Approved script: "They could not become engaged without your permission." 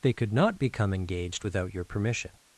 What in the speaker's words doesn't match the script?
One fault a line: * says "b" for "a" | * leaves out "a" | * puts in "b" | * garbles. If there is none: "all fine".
all fine